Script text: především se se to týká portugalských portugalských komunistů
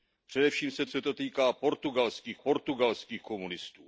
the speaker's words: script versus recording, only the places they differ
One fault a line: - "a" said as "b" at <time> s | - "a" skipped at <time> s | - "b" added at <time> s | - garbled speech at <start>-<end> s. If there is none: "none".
none